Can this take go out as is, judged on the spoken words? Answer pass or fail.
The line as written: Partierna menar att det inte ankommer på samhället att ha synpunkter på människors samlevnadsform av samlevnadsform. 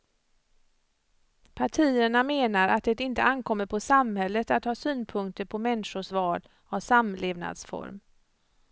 fail